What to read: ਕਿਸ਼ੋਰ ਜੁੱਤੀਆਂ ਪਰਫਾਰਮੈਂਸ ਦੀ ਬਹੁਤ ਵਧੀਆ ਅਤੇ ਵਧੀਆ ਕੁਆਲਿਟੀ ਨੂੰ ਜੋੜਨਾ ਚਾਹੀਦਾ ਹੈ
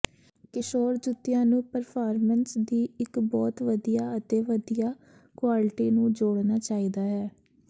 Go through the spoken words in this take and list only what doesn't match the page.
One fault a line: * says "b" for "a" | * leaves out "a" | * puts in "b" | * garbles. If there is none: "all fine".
* puts in "ਨੂੰ"
* puts in "ਇੱਕ"